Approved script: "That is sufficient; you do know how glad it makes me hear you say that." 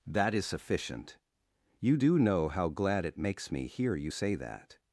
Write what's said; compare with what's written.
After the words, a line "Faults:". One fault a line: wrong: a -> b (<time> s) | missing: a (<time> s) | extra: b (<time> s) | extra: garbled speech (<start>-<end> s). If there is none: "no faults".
"That is sufficient; you do know how glad it makes me hear you say that."
Faults:
no faults